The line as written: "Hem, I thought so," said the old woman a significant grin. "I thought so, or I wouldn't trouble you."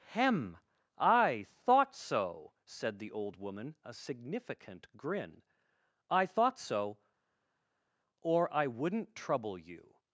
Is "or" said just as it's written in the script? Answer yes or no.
yes